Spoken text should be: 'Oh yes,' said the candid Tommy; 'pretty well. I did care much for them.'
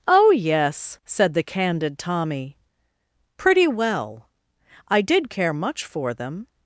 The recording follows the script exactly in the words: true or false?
true